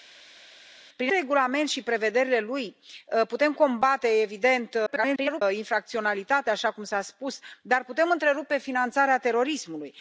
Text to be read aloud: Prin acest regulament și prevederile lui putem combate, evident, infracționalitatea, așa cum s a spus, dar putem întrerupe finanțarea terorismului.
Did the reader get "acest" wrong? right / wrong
wrong